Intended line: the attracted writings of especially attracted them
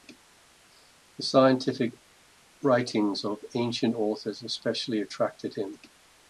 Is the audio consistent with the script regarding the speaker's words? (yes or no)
no